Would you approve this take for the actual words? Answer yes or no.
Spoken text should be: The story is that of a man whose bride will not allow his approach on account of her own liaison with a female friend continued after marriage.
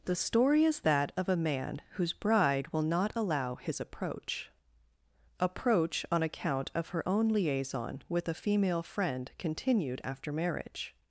no